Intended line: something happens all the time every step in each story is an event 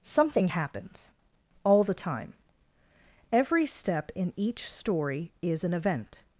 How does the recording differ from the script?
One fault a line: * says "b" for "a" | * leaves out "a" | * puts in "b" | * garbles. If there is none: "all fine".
all fine